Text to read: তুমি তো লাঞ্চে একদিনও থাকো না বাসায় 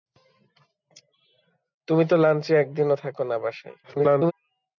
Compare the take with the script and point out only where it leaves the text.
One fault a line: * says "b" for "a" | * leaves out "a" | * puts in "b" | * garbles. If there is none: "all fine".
* garbles